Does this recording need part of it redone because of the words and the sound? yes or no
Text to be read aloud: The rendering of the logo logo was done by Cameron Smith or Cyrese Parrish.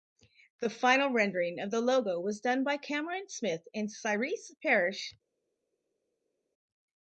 yes